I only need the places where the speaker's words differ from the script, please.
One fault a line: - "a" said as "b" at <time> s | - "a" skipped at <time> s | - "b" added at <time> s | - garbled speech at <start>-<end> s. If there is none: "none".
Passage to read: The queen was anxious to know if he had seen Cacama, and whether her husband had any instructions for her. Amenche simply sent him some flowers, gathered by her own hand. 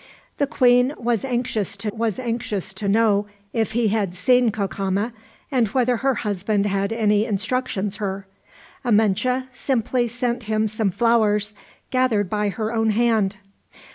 - "was anxious to" added at 1.9 s
- "for" skipped at 8.0 s